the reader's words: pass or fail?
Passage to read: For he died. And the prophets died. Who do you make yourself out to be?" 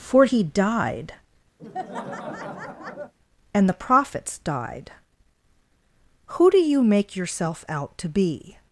pass